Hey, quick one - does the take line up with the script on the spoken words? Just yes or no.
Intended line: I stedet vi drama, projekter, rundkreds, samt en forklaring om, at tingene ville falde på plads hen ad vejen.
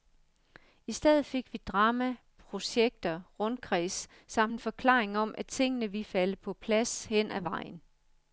no